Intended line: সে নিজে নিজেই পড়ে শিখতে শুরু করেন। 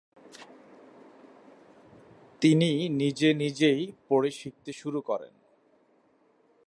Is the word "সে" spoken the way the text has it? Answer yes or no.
no